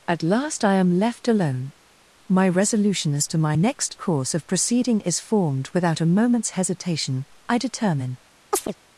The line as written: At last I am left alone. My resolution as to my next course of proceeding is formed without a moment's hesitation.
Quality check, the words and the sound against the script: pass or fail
fail